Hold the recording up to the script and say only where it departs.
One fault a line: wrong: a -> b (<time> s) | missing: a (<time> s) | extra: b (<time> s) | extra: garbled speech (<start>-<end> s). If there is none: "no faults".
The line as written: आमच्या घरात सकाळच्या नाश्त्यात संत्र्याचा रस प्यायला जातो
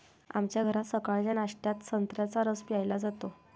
no faults